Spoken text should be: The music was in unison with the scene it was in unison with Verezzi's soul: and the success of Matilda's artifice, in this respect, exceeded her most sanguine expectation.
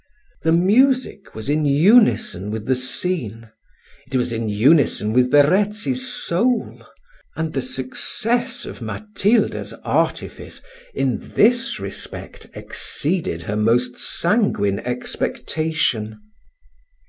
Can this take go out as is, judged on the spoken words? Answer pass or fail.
pass